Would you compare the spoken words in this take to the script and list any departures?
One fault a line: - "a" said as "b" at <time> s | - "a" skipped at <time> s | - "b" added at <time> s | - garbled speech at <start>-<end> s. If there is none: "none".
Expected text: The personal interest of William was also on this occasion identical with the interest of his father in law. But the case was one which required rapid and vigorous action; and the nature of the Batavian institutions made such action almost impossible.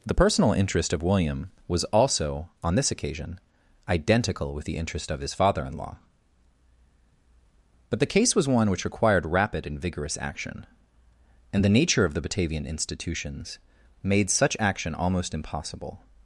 none